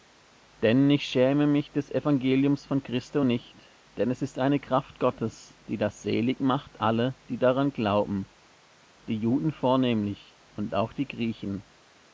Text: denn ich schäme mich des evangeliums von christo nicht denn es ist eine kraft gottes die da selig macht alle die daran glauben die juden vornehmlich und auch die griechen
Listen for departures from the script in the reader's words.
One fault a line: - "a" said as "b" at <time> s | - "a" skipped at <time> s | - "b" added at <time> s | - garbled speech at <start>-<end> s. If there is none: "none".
none